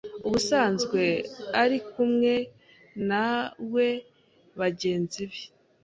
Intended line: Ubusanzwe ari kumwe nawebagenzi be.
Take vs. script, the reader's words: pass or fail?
pass